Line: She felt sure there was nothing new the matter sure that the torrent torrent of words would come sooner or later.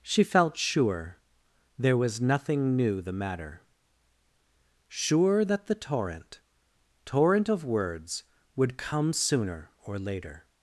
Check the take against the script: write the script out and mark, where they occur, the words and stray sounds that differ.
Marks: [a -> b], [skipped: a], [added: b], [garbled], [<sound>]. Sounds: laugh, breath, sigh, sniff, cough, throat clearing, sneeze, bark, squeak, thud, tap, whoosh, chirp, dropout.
She felt sure there was nothing new the matter sure that the torrent torrent of words would come sooner or later.